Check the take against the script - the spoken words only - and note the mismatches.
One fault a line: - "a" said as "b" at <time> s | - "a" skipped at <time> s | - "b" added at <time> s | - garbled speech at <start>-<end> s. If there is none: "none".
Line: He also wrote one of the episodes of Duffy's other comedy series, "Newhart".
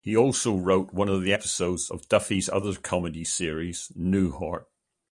none